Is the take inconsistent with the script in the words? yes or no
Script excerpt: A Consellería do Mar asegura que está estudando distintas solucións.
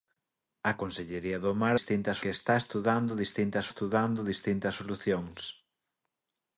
yes